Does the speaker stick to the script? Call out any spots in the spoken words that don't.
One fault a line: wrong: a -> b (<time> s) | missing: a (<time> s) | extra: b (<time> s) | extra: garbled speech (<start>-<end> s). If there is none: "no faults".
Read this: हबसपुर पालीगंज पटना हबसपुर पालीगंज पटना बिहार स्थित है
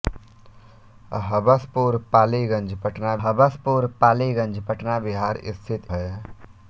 no faults